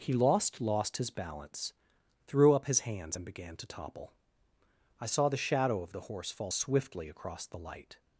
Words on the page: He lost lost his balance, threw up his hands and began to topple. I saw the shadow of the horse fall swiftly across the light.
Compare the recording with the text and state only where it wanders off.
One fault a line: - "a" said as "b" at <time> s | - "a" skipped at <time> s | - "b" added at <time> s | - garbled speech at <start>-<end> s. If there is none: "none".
none